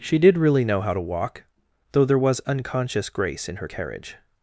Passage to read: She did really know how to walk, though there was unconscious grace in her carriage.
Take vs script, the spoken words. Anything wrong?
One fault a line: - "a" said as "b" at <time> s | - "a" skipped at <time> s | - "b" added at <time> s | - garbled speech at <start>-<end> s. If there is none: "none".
none